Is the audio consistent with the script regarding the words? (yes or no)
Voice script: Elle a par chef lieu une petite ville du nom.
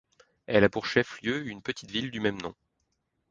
no